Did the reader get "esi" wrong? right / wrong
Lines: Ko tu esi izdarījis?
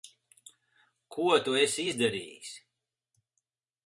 right